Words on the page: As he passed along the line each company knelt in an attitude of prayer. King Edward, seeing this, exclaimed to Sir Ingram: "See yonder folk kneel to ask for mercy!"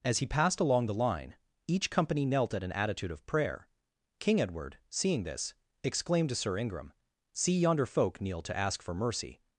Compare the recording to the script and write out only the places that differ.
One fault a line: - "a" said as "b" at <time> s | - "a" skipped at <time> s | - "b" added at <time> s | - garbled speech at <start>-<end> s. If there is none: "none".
- "in" said as "at" at 2.5 s